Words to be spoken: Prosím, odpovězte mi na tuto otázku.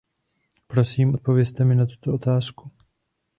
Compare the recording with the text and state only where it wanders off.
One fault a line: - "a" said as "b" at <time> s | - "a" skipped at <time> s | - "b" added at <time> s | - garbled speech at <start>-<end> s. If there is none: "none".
none